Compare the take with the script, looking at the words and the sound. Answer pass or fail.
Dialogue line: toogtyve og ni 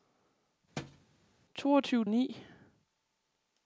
fail